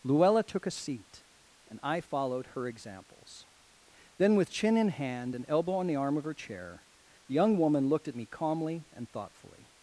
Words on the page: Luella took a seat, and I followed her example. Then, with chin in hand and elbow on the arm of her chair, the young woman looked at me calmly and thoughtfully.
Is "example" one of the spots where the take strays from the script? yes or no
yes